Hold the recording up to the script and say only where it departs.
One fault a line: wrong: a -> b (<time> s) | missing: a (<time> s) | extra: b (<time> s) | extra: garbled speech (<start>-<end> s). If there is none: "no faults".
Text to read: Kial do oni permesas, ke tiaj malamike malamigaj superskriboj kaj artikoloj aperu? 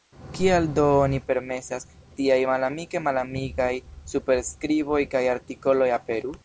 missing: ke (1.9 s)